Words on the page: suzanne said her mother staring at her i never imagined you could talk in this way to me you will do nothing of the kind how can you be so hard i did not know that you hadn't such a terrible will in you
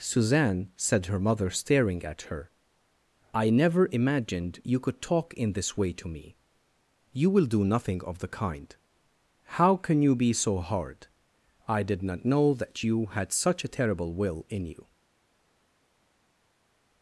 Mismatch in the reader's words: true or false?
true